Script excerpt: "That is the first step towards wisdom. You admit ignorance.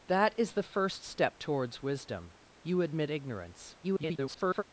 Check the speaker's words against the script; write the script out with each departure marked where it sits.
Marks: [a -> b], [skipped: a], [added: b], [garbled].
"That is the first step towards wisdom. You admit ignorance. [garbled]